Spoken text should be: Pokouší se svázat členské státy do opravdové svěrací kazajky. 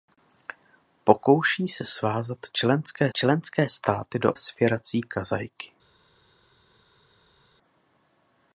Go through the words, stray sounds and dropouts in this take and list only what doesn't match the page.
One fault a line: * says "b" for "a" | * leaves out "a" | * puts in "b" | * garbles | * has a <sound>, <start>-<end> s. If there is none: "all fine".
* puts in "členské"
* leaves out "opravdové"